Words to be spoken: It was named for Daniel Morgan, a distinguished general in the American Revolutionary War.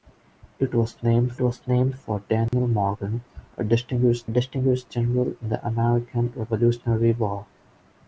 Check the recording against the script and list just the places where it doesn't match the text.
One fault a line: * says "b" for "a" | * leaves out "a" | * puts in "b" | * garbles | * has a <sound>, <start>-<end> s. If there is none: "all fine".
* puts in "was named"
* has a dropout, 2.5-2.5 s
* puts in "distinguished"